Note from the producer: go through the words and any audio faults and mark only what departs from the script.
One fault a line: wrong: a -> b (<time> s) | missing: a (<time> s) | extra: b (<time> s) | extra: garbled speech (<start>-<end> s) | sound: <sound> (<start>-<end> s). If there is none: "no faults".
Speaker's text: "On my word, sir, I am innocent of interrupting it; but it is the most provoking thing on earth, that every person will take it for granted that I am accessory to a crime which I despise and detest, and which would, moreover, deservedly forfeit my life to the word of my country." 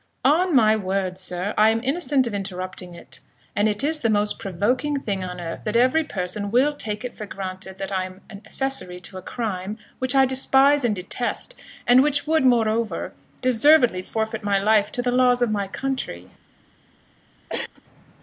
wrong: but -> and (3.5 s)
wrong: word -> laws (15.1 s)
sound: cough (17.5-17.8 s)